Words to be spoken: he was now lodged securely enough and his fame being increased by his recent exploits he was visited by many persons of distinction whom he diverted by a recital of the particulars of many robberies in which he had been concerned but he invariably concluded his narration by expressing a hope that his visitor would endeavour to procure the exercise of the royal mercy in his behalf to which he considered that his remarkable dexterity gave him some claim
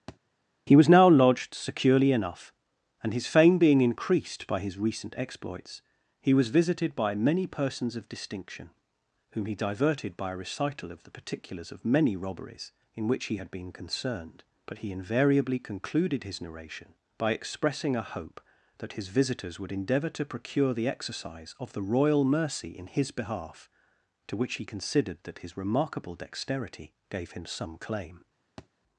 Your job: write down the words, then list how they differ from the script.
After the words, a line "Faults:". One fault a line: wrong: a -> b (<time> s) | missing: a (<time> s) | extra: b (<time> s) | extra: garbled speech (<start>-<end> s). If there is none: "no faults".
he was now lodged securely enough and his fame being increased by his recent exploits he was visited by many persons of distinction whom he diverted by a recital of the particulars of many robberies in which he had been concerned but he invariably concluded his narration by expressing a hope that his visitors would endeavour to procure the exercise of the royal mercy in his behalf to which he considered that his remarkable dexterity gave him some claim
Faults:
wrong: visitor -> visitors (19.1 s)